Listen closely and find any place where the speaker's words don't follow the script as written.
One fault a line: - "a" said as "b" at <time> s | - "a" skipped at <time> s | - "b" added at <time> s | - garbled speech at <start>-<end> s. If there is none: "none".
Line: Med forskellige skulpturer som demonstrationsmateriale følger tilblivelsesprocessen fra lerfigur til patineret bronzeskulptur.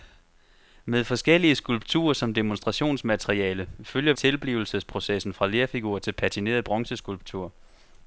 none